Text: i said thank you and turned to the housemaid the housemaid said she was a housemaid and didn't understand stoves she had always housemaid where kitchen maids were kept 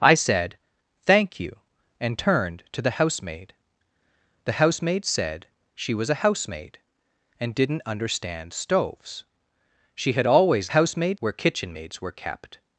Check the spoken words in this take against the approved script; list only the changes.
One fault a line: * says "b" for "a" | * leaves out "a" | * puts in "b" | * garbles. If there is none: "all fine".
all fine